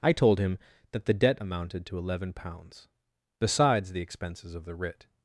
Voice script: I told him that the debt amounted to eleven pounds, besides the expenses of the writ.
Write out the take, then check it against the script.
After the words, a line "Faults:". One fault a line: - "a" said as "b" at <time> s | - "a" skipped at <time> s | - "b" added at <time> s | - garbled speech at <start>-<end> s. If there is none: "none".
I told him that the debt amounted to eleven pounds, besides the expenses of the writ.
Faults:
none